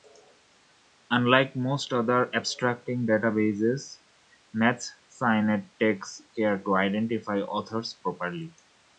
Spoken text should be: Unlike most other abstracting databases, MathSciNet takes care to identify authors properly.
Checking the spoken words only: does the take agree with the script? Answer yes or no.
yes